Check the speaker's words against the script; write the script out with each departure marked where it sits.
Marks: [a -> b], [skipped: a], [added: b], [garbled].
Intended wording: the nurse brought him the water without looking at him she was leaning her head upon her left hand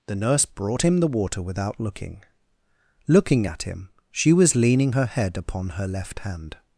the nurse brought him the water without looking [added: looking] at him she was leaning her head upon her left hand